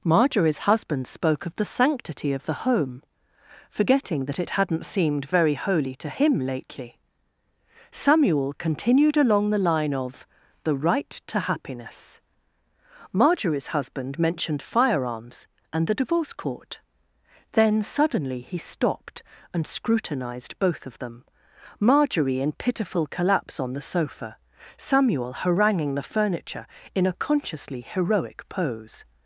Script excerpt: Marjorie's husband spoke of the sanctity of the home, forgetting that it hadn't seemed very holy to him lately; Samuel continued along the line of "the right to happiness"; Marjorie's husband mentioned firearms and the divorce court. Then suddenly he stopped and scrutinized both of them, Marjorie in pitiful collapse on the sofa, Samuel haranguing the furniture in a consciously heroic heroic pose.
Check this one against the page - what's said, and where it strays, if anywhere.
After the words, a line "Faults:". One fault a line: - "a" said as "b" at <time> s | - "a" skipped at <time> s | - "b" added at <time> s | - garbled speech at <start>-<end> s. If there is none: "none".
Marjorie's husband spoke of the sanctity of the home, forgetting that it hadn't seemed very holy to him lately; Samuel continued along the line of "the right to happiness"; Marjorie's husband mentioned firearms and the divorce court. Then suddenly he stopped and scrutinized both of them, Marjorie in pitiful collapse on the sofa, Samuel haranguing the furniture in a consciously heroic pose.
Faults:
- "heroic" skipped at 28.5 s